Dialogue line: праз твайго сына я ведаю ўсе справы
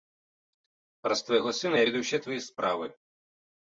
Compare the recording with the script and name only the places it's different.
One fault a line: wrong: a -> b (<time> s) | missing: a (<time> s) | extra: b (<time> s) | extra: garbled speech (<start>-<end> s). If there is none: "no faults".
extra: твае (2.2 s)